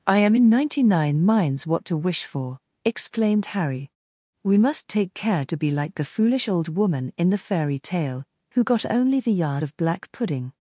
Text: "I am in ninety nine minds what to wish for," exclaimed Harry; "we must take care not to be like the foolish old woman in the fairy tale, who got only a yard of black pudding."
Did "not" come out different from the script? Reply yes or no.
yes